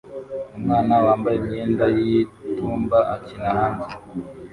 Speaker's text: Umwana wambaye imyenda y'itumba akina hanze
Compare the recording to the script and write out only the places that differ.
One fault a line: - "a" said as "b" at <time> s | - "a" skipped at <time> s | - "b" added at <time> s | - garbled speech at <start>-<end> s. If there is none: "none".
none